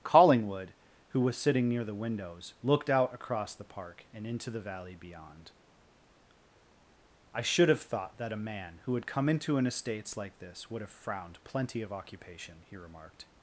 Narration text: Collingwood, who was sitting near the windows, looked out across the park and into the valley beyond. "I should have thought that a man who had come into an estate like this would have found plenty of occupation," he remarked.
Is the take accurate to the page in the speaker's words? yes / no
no